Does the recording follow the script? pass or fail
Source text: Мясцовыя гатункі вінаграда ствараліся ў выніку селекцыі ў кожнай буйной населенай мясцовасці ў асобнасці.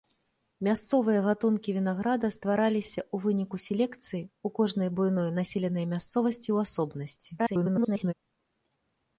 fail